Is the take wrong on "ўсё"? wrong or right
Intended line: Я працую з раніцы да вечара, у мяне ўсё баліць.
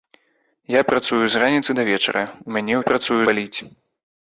wrong